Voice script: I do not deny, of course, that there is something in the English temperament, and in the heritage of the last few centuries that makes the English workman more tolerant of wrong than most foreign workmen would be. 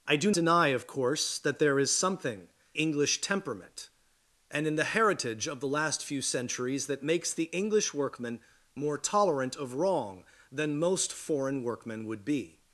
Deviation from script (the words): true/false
true